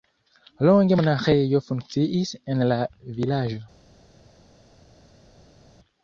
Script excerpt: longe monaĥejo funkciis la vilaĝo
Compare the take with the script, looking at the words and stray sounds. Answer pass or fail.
fail